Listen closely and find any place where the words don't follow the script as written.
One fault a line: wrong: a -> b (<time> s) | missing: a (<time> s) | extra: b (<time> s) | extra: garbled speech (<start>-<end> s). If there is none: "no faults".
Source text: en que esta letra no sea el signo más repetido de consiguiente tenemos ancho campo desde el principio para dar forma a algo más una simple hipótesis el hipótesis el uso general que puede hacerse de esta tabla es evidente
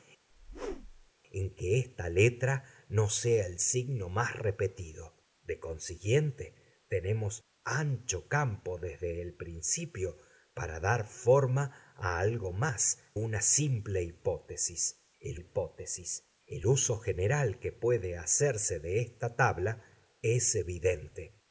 no faults